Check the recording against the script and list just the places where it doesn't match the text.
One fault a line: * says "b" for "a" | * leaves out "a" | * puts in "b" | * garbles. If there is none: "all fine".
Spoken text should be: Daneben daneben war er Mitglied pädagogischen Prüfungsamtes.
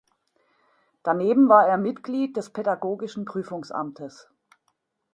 * leaves out "daneben"
* puts in "des"